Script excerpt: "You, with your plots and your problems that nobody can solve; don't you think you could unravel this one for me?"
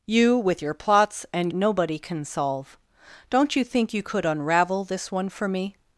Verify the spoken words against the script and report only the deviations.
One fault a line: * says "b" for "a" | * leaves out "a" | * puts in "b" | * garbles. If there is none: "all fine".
* leaves out "your problems that"